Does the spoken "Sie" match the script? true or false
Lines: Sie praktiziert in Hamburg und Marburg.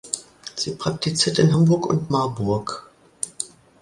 true